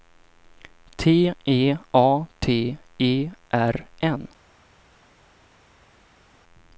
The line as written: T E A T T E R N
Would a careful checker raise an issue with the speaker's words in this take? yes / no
yes